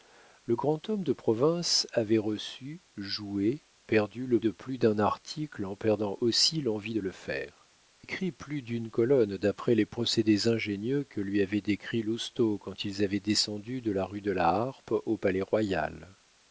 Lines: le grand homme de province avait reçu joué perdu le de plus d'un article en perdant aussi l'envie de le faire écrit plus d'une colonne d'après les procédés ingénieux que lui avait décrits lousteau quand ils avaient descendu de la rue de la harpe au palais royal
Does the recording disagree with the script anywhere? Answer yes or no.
no